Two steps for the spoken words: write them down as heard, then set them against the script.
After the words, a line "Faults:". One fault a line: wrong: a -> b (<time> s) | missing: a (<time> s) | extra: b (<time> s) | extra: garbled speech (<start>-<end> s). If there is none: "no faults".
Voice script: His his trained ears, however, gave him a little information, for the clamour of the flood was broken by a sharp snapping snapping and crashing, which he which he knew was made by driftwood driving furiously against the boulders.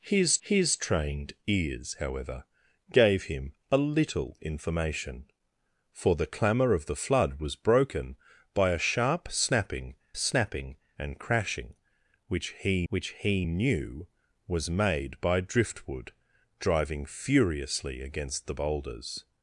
His his trained ears, however, gave him a little information, for the clamour of the flood was broken by a sharp snapping snapping and crashing, which he which he knew was made by driftwood driving furiously against the boulders.
Faults:
no faults